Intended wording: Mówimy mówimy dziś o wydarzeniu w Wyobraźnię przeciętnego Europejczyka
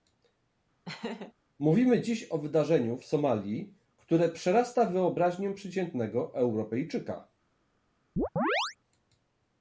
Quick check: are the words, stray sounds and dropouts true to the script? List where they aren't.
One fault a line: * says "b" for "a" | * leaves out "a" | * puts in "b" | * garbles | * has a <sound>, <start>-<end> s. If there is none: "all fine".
* has a laugh, 0.9-1.3 s
* leaves out "mówimy"
* puts in "Somalii które przerasta"
* has a chirp, 8.2-8.8 s